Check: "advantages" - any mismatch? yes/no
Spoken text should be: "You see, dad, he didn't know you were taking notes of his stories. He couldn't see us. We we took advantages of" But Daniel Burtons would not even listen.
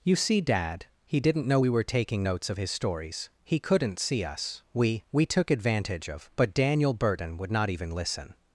yes